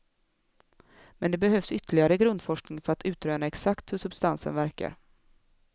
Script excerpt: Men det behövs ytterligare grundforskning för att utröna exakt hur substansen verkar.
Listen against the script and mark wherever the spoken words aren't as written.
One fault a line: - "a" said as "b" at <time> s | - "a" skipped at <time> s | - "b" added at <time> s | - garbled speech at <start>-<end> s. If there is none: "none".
none